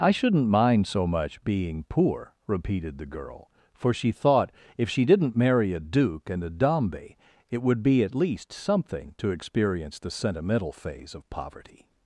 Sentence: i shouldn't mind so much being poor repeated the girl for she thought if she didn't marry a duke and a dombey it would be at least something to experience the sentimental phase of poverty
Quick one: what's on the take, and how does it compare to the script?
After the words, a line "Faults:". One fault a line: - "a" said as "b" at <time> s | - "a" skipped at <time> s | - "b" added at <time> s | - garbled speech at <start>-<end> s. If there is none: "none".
i shouldn't mind so much being poor repeated the girl for she thought if she didn't marry a duke and a dombey it would be at least something to experience the sentimental phase of poverty
Faults:
none